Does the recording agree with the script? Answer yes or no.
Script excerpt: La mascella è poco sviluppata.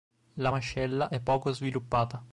yes